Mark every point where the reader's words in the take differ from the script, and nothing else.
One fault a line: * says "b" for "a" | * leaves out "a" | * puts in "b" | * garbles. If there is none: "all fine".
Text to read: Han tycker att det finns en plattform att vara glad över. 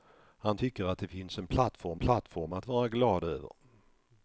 * puts in "plattform"